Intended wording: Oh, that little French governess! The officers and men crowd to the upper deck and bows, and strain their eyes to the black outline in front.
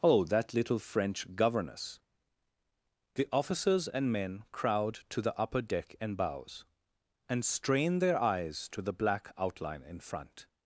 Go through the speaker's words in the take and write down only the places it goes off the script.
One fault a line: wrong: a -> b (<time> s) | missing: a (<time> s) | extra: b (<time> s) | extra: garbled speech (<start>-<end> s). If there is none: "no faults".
no faults